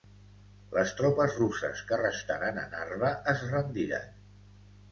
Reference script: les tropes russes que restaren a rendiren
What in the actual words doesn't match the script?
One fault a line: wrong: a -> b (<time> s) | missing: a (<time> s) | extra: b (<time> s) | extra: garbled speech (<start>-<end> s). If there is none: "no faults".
extra: narva es (2.8 s)